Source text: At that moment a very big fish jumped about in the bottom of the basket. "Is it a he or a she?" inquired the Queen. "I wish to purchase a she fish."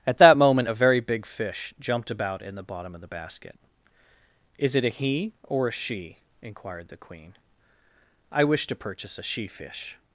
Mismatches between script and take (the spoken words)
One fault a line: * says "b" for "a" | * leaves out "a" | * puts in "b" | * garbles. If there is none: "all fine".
all fine